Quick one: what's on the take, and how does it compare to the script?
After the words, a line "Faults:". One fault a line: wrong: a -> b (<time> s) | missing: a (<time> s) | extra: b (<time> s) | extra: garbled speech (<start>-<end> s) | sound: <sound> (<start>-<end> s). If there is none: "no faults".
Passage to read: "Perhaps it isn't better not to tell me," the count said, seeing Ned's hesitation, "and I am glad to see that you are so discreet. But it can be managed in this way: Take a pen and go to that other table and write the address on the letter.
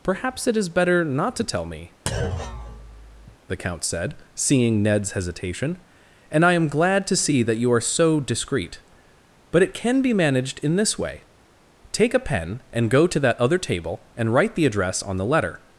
"Perhaps it is better not to tell me," the count said, seeing Ned's hesitation, "and I am glad to see that you are so discreet. But it can be managed in this way: Take a pen and go to that other table and write the address on the letter.
Faults:
wrong: isn't -> is (0.6 s)
sound: thud (2.1-3.4 s)